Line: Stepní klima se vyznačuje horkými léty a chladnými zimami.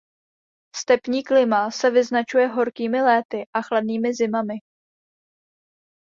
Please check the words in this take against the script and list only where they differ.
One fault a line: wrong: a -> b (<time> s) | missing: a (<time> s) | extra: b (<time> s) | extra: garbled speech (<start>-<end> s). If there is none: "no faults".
no faults